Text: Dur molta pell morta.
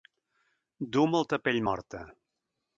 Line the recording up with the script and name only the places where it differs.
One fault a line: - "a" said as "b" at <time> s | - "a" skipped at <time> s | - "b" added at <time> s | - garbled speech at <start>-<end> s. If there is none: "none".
none